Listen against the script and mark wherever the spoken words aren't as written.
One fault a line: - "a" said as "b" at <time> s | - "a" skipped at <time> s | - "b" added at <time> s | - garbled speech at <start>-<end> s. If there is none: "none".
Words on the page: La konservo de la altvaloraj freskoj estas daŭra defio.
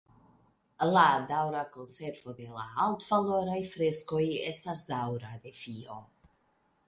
- "daŭra" added at 1.3 s